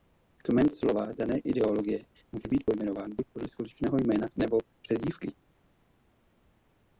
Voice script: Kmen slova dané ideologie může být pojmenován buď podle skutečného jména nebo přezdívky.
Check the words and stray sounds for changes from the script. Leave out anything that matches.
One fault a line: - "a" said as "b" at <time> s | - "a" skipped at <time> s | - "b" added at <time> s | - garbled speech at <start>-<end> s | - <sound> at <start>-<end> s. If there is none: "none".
none